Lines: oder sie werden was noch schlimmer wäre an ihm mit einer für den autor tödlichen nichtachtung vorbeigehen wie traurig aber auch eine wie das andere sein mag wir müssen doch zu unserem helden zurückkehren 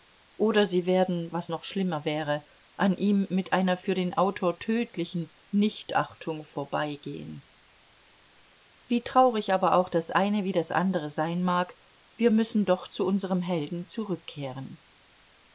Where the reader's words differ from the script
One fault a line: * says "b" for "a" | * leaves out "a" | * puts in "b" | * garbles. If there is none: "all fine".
* puts in "das"